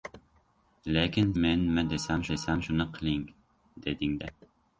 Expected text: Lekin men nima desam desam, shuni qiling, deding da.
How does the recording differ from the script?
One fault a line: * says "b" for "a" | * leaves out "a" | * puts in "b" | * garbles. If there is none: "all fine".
all fine